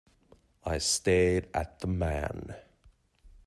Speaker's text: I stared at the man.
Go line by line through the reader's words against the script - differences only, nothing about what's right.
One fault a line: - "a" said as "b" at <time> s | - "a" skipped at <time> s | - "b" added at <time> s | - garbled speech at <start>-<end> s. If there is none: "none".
none